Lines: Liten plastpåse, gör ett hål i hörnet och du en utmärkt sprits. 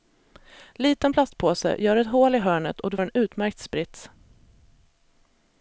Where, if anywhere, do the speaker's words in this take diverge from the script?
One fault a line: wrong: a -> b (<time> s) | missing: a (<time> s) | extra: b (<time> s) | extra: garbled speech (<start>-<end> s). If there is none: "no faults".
no faults